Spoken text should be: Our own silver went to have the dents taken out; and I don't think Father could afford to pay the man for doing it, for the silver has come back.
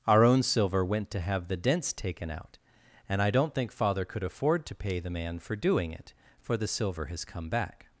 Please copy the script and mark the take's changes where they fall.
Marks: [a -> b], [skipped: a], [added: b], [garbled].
Our own silver went to have the dents taken out; and I don't think Father could afford to pay the man for doing it, for the silver has come back.